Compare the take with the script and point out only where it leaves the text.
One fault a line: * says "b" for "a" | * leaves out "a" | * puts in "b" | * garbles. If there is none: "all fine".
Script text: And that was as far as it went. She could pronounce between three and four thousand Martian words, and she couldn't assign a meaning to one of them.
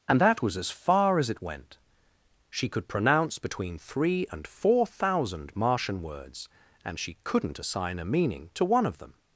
all fine